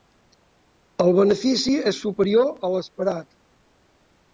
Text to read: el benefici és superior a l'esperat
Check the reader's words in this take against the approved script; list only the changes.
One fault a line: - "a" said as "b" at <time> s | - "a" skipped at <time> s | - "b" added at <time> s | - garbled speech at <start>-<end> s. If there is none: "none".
none